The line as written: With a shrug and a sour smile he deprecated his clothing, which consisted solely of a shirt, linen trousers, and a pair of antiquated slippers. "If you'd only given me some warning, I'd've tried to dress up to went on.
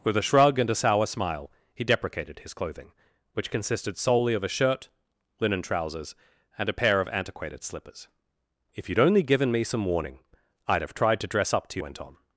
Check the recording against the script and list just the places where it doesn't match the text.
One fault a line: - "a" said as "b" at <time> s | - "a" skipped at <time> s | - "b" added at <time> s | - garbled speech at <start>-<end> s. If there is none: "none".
none